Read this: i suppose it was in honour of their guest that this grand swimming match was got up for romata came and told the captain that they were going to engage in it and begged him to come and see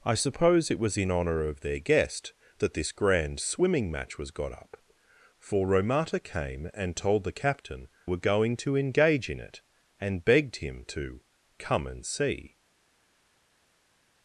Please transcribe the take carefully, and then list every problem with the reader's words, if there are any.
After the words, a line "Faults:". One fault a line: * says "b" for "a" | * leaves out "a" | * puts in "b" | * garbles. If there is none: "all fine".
i suppose it was in honour of their guest that this grand swimming match was got up for romata came and told the captain were going to engage in it and begged him to come and see
Faults:
* leaves out "that they"